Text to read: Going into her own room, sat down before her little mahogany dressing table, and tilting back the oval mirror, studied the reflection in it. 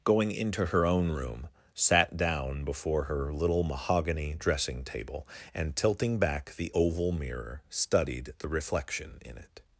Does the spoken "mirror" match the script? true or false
true